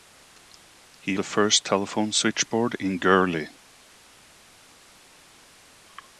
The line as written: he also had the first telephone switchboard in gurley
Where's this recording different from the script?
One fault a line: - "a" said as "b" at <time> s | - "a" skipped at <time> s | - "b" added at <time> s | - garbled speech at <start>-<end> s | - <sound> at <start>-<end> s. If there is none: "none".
- "also had" skipped at 1.2 s